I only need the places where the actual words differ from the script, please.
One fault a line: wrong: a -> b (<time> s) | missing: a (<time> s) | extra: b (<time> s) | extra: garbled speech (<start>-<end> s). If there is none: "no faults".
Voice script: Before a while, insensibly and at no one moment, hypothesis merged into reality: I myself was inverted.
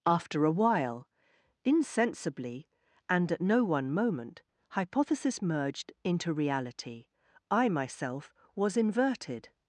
wrong: Before -> After (0.1 s)